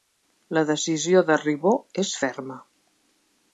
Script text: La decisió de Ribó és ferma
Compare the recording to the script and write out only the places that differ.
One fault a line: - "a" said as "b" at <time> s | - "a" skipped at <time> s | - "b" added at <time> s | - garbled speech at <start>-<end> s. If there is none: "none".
none